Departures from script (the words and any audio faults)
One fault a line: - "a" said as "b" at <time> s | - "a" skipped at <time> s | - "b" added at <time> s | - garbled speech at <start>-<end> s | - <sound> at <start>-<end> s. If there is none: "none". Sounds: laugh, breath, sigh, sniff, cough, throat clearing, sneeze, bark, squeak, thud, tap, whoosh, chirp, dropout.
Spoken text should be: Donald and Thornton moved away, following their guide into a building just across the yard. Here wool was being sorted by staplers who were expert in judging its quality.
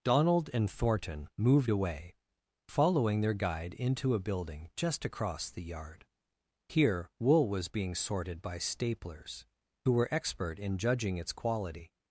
none